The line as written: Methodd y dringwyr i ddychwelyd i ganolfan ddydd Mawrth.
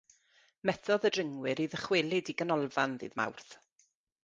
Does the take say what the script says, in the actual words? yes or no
yes